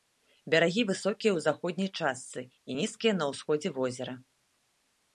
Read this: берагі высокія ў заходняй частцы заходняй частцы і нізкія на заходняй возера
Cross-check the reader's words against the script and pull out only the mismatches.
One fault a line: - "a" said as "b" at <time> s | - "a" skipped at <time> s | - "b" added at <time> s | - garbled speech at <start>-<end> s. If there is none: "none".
- "заходняй частцы" skipped at 2.4 s
- "заходняй" said as "ўсходзе" at 3.3 s